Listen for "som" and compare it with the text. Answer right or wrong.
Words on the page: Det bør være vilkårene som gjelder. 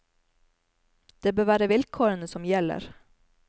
right